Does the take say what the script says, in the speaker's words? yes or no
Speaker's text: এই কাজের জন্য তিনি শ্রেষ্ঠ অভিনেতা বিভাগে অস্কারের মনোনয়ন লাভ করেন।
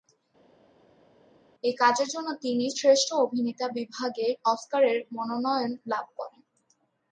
yes